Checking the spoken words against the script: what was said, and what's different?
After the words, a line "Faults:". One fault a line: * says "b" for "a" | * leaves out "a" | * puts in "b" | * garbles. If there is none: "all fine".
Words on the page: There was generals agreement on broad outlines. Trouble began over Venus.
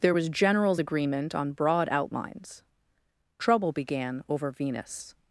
There was generals agreement on broad outlines. Trouble began over Venus.
Faults:
all fine